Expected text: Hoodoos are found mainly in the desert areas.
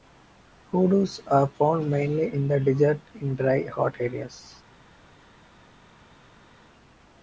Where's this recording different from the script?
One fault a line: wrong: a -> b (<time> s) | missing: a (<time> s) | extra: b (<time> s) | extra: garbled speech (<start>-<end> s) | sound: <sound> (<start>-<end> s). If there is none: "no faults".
extra: in dry hot (3.1 s)